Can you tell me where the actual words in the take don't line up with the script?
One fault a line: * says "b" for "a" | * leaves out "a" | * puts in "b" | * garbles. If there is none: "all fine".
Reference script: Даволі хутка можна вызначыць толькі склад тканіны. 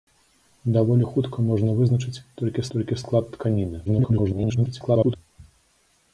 * puts in "толькі"
* garbles